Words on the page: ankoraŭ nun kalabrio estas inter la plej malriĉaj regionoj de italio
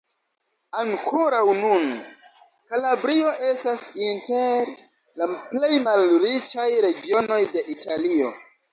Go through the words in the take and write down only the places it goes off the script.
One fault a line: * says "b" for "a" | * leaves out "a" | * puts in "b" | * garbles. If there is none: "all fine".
all fine